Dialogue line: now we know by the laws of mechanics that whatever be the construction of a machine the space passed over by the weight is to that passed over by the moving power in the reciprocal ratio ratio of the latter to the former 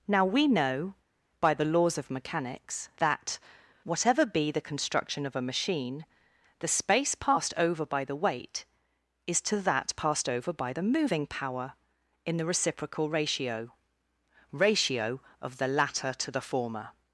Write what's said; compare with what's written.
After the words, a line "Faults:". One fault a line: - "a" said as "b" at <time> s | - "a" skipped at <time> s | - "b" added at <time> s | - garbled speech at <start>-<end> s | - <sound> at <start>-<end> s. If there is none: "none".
now we know by the laws of mechanics that whatever be the construction of a machine the space passed over by the weight is to that passed over by the moving power in the reciprocal ratio ratio of the latter to the former
Faults:
none